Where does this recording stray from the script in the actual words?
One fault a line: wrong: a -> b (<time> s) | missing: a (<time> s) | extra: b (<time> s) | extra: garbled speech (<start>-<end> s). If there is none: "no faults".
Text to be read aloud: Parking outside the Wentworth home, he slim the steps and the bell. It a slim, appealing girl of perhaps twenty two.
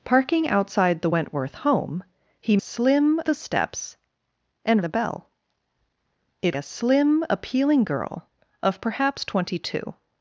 no faults